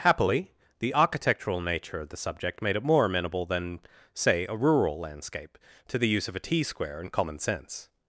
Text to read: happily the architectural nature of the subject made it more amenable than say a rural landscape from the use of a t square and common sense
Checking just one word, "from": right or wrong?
wrong